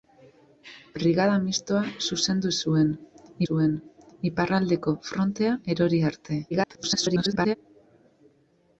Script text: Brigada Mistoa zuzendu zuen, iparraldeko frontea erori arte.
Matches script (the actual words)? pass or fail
fail